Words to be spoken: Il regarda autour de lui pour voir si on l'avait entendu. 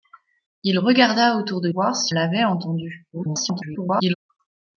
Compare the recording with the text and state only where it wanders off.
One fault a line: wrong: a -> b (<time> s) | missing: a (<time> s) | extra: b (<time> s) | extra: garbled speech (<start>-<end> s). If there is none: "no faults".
missing: lui pour (1.7 s)
missing: on (2.1 s)
extra: garbled speech (3.1-4.1 s)